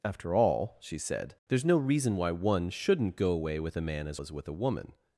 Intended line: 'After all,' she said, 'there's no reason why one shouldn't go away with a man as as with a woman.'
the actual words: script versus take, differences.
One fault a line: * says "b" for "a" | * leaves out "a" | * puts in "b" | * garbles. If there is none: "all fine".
all fine